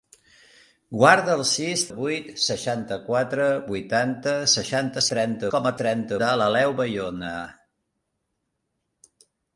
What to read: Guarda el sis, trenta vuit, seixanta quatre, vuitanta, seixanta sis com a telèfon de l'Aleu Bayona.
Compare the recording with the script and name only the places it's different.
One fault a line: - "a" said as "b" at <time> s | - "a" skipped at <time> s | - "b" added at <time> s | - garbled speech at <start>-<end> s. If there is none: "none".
- "trenta" skipped at 1.8 s
- "sis" said as "trenta" at 5.1 s
- "telèfon" said as "trenta" at 5.8 s